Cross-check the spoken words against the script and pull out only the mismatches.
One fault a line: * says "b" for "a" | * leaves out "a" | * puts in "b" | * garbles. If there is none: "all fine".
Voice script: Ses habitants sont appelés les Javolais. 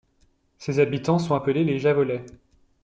all fine